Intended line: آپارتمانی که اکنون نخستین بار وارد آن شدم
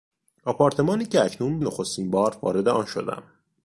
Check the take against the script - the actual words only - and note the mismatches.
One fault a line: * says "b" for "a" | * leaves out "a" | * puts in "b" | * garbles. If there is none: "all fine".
all fine